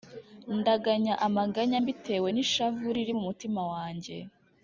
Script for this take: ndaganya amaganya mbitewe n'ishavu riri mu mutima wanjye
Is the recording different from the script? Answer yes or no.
no